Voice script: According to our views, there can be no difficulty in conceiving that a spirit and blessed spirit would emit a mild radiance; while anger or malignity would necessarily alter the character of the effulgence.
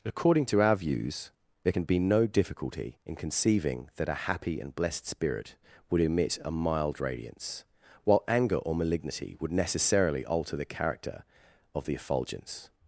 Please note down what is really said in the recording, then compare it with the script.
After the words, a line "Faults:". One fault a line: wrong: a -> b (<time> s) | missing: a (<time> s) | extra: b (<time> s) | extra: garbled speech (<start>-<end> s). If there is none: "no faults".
According to our views, there can be no difficulty in conceiving that a happy and blessed spirit would emit a mild radiance; while anger or malignity would necessarily alter the character of the effulgence.
Faults:
wrong: spirit -> happy (4.3 s)